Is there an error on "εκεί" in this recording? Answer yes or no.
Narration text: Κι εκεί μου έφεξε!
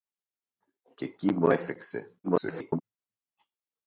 no